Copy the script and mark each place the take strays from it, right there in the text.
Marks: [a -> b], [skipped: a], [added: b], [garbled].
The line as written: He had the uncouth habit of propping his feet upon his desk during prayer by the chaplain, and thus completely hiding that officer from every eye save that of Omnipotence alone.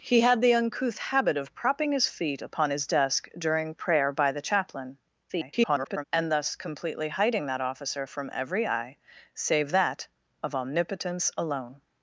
He had the uncouth habit of propping his feet upon his desk during prayer by the chaplain, [garbled] and thus completely hiding that officer from every eye save that of Omnipotence alone.